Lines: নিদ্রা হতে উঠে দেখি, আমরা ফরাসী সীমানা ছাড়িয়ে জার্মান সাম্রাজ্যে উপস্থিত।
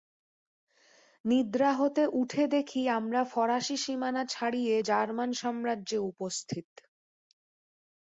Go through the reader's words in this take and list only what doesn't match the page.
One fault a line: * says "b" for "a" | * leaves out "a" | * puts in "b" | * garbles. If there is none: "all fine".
all fine